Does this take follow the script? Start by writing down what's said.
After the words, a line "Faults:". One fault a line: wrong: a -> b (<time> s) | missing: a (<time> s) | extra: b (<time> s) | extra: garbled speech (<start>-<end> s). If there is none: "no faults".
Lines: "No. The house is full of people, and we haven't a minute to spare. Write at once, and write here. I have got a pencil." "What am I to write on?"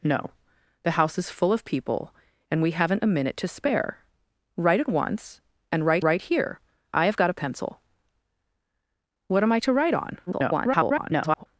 "No. The house is full of people, and we haven't a minute to spare. Write at once, and write write here. I have got a pencil." "What am I to write on?" [garbled]
Faults:
extra: write (6.0 s)
extra: garbled speech (10.3-11.5 s)